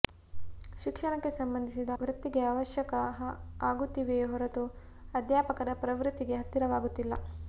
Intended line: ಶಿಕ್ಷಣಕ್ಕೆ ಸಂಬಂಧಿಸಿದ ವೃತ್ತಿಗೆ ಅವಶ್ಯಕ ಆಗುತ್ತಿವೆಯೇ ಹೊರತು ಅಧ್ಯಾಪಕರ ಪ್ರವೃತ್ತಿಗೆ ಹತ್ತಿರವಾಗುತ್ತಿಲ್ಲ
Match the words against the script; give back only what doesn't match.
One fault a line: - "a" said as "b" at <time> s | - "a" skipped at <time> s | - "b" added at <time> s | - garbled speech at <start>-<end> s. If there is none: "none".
none